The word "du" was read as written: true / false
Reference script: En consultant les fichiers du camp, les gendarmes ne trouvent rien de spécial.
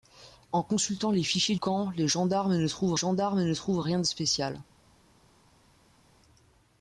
false